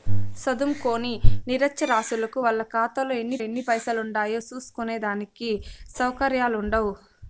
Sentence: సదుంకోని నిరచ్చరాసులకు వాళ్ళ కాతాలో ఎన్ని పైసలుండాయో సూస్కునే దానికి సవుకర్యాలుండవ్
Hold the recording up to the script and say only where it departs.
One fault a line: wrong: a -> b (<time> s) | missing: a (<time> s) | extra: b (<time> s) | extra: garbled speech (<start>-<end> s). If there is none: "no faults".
extra: ఎన్ని (3.4 s)